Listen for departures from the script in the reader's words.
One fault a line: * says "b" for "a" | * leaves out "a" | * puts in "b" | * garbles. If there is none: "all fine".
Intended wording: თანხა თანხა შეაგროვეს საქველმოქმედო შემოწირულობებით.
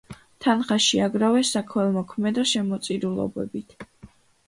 * leaves out "თანხა"